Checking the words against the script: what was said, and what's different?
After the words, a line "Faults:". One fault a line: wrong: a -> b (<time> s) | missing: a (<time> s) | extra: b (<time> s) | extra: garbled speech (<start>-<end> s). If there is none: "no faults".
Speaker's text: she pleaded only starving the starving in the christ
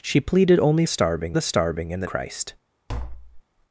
she pleaded only starving the starving in the christ
Faults:
no faults